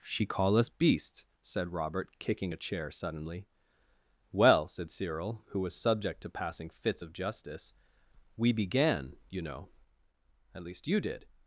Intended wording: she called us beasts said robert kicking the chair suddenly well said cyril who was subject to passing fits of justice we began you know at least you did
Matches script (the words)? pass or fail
fail